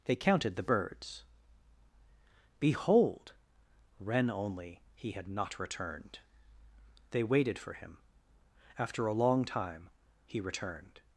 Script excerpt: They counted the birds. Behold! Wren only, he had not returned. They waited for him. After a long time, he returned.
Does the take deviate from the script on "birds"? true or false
false